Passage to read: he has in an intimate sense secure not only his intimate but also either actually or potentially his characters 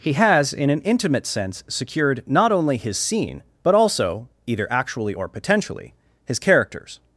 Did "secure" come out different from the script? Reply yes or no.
yes